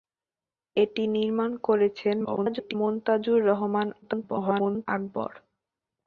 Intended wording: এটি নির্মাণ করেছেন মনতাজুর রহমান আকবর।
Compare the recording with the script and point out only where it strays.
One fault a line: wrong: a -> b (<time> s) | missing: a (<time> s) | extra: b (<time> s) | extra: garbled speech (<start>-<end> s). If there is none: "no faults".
extra: garbled speech (2.2-2.7 s)
extra: garbled speech (4.0-4.9 s)